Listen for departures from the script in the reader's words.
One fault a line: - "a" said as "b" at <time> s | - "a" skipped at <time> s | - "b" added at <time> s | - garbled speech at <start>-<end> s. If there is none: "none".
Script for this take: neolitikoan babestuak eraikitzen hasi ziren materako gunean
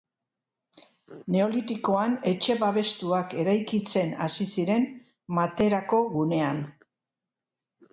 - "etxe" added at 2.3 s